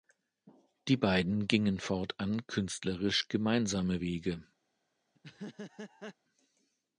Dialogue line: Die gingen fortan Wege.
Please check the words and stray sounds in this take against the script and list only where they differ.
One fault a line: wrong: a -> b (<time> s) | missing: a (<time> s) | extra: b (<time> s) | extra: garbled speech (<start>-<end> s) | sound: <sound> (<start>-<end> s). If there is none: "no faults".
extra: beiden (1.0 s)
extra: künstlerisch gemeinsame (2.5 s)
sound: laugh (5.1-6.1 s)